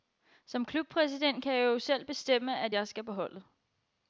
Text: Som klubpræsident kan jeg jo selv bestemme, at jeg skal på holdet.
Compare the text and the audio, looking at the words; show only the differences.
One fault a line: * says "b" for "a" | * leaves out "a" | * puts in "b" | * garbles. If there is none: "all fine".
all fine